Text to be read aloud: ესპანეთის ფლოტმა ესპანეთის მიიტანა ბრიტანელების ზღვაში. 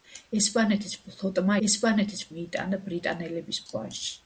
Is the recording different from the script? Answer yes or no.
no